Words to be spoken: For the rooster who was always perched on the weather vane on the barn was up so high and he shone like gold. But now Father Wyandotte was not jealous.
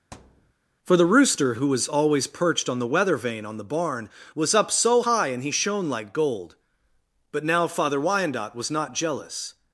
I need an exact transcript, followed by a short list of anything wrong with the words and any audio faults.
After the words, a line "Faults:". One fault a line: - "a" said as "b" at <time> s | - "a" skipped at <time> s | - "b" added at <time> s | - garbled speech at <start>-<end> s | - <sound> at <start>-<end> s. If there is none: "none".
For the rooster who was always perched on the weather vane on the barn was up so high and he shone like gold. But now Father Wyandotte was not jealous.
Faults:
- thud at 0.1-0.5 s